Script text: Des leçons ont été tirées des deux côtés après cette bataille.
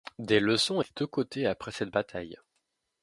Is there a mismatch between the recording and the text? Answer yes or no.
yes